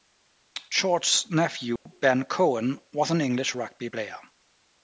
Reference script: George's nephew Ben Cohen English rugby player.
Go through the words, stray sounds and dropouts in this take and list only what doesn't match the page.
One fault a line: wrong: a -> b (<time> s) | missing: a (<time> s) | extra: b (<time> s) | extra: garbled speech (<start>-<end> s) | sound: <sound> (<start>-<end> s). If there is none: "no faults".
sound: dropout (1.8-1.9 s)
extra: was an (2.9 s)